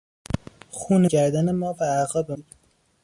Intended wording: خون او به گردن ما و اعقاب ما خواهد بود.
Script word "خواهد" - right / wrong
wrong